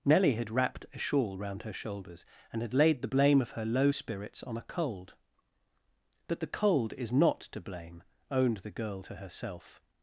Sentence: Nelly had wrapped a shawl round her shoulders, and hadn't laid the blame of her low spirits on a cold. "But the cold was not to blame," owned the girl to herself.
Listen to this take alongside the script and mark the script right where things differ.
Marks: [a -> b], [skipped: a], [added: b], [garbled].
Nelly had wrapped a shawl round her shoulders, and [hadn't -> had] laid the blame of her low spirits on a cold. "But the cold [was -> is] not to blame," owned the girl to herself.